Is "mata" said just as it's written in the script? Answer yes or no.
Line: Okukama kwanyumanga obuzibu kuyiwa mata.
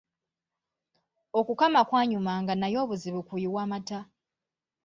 yes